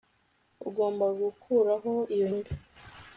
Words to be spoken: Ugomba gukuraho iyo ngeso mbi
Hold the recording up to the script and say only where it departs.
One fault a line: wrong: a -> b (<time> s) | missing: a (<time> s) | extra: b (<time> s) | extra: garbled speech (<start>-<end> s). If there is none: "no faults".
missing: ngeso (2.3 s)